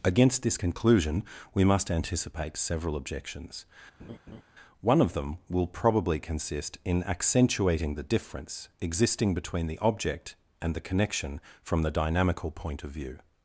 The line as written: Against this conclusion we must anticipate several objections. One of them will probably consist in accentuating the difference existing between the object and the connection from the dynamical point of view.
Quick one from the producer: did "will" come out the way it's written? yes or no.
yes